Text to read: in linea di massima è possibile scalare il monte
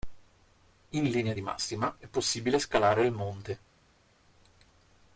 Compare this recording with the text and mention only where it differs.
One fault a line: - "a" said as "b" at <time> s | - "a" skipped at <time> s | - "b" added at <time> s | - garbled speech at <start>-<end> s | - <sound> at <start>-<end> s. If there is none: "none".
none